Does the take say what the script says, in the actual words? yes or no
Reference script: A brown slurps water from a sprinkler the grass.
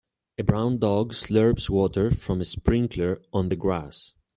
no